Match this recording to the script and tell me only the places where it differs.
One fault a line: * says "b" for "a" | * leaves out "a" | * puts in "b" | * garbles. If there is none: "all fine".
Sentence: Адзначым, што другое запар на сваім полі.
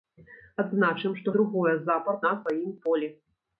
all fine